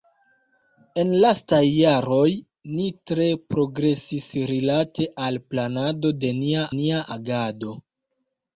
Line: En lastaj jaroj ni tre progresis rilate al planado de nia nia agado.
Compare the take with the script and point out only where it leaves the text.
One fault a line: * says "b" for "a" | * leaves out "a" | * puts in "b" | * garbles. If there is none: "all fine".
all fine